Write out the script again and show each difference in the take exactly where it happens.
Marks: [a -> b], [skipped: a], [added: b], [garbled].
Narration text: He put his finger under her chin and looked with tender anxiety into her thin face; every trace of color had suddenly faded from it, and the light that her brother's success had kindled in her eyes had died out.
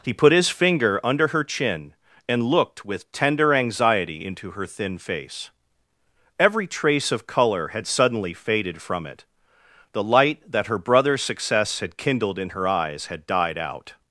He put his finger under her chin and looked with tender anxiety into her thin face; every trace of color had suddenly faded from it, [skipped: and] the light that her brother's success had kindled in her eyes had died out.